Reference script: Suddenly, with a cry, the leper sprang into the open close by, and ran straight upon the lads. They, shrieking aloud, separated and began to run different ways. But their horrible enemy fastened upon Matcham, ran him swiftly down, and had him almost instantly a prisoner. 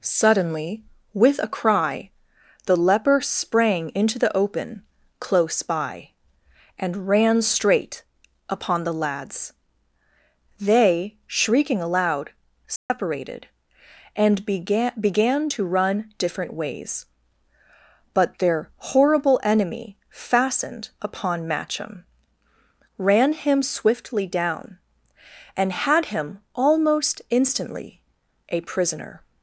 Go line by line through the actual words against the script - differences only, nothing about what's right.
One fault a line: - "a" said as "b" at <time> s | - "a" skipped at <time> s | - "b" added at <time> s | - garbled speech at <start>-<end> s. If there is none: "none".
- "began" added at 15.0 s